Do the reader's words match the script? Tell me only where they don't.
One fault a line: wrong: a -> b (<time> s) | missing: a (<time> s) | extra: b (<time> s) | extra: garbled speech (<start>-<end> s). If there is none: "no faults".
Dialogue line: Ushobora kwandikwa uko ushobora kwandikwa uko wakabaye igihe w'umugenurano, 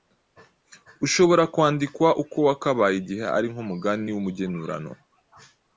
wrong: ushobora kwandikwa uko wakabaye igihe -> wakabaye igihe ari nk'umugani (2.5 s)